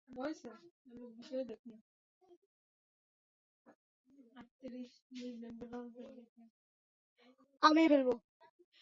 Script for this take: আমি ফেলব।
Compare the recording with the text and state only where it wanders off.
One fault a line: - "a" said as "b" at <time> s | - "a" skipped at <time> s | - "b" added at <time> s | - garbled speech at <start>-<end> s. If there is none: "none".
none